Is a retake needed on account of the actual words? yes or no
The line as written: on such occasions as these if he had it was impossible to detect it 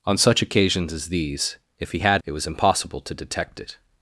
no